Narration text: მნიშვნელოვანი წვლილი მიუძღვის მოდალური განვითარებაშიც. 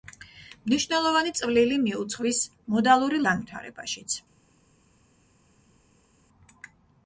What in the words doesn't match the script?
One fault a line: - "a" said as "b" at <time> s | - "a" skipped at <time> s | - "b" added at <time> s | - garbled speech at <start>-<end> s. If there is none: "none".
none